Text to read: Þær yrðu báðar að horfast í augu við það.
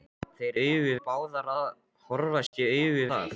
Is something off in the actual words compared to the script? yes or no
yes